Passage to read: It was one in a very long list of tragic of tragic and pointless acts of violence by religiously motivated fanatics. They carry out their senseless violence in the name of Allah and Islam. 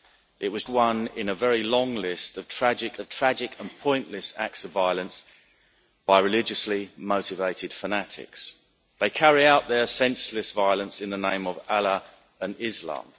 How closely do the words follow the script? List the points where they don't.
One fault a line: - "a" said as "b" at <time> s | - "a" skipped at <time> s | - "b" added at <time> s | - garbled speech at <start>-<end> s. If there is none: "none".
none